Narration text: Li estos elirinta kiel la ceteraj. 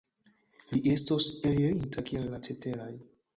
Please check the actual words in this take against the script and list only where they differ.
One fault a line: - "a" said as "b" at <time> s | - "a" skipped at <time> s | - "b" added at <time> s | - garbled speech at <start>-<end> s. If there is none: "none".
none